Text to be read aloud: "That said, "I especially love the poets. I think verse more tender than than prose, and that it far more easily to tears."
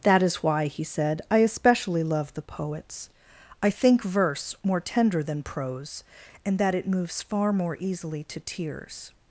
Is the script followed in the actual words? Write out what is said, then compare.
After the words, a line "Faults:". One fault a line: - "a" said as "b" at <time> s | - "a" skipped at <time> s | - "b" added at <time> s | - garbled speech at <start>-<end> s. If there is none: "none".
"That is why," he said, "I especially love the poets. I think verse more tender than prose, and that it moves far more easily to tears."
Faults:
- "is why he" added at 0.2 s
- "than" skipped at 5.4 s
- "moves" added at 6.9 s